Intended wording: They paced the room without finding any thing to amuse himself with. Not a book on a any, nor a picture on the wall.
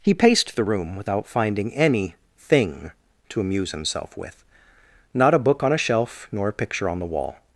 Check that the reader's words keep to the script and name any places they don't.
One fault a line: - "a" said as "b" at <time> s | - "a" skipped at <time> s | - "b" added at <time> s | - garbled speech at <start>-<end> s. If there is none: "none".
- "They" said as "He" at 0.0 s
- "any" said as "shelf" at 5.8 s